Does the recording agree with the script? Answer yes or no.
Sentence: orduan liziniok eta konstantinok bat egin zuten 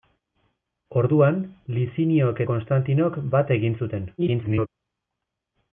no